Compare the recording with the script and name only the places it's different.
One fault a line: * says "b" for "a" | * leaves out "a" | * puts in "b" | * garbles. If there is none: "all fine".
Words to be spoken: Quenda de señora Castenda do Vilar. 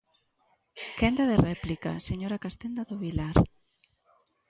* puts in "réplica"